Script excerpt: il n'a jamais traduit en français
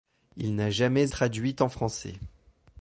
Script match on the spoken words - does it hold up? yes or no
yes